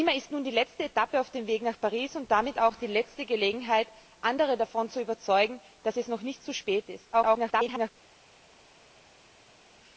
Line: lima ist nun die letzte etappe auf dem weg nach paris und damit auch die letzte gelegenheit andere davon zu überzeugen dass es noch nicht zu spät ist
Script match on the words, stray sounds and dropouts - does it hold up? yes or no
no